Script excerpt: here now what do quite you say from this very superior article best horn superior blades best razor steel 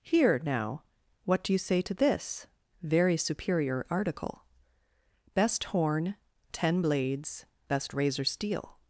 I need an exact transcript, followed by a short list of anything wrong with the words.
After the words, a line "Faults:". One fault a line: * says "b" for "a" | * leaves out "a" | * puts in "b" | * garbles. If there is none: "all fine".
here now what do you say to this very superior article best horn ten blades best razor steel
Faults:
* leaves out "quite"
* says "to" for "from"
* says "ten" for "superior"